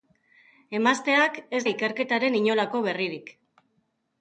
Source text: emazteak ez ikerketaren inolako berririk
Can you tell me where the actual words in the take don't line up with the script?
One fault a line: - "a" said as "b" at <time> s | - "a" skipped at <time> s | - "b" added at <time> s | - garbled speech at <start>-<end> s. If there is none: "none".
none